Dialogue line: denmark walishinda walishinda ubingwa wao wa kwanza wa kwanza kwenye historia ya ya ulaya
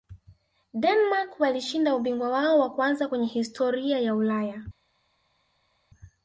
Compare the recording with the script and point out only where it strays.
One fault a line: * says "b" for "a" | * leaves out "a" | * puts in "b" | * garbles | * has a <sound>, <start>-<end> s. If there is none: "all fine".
* leaves out "walishinda"
* leaves out "wa kwanza"
* leaves out "ya"